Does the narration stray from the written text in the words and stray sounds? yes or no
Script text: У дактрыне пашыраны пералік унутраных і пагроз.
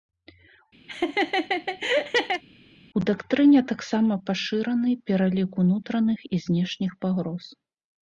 yes